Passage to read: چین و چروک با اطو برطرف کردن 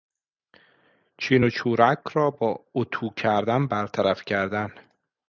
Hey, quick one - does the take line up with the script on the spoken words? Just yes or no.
no